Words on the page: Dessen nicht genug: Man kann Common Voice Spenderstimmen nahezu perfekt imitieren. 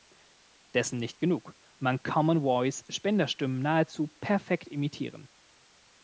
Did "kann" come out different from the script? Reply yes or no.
yes